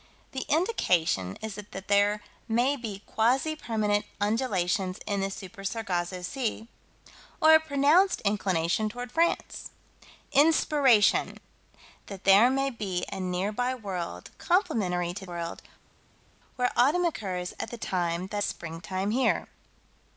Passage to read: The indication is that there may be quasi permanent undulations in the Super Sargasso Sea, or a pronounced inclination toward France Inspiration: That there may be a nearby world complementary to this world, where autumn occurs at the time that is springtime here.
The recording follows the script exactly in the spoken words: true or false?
false